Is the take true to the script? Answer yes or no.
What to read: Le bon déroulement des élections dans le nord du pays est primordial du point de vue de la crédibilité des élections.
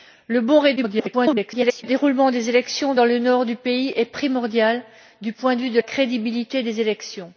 no